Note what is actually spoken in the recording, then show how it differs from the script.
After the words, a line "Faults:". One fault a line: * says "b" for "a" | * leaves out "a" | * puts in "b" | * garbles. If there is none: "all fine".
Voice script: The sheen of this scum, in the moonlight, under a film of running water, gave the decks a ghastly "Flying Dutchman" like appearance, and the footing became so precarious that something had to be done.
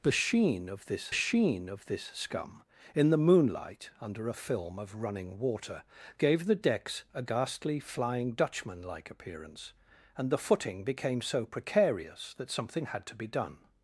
The sheen of this sheen of this scum, in the moonlight, under a film of running water, gave the decks a ghastly "Flying Dutchman" like appearance, and the footing became so precarious that something had to be done.
Faults:
* puts in "sheen of this"